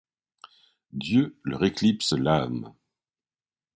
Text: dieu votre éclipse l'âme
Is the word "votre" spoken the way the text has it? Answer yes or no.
no